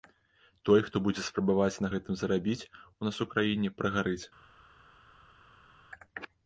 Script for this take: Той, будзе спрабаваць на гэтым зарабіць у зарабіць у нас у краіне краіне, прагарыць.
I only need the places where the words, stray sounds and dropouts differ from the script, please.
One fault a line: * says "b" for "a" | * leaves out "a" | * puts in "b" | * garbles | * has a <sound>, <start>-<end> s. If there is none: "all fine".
* puts in "хто"
* leaves out "зарабіць у"
* leaves out "краіне"